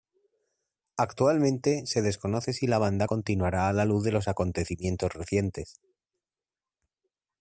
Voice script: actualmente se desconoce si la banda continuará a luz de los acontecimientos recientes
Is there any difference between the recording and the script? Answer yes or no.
yes